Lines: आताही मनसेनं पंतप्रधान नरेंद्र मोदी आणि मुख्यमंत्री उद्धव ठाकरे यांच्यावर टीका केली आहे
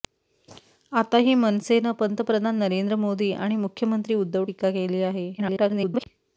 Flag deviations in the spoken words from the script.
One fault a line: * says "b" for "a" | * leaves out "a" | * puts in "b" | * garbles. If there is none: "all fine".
* leaves out "ठाकरे यांच्यावर"
* garbles